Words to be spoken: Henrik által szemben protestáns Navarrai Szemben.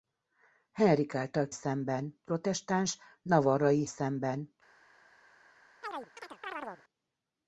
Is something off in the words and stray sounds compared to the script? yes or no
yes